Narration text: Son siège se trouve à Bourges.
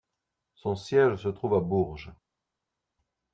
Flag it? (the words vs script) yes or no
no